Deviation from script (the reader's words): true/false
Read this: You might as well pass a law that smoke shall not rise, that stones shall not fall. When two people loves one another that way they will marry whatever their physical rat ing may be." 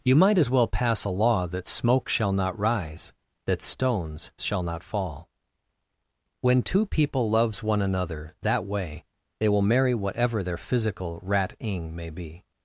false